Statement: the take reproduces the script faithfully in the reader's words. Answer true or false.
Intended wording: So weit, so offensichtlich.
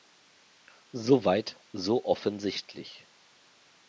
true